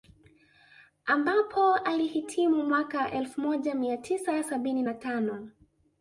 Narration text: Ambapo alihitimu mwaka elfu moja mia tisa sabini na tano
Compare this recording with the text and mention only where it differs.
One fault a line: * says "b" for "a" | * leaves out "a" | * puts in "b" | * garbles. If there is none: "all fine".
all fine